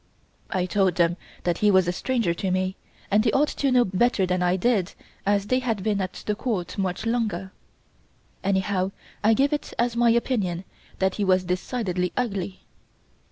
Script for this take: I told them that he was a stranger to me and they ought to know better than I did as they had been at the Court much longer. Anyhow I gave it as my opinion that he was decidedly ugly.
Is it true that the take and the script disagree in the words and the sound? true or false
false